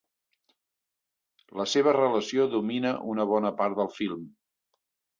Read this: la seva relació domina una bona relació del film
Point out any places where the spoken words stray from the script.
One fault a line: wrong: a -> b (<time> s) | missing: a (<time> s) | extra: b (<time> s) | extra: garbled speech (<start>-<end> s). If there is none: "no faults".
wrong: relació -> part (3.6 s)